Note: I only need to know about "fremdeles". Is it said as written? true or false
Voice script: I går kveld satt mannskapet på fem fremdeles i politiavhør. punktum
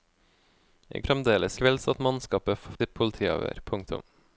false